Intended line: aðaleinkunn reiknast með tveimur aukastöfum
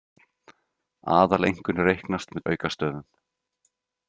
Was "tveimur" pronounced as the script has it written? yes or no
no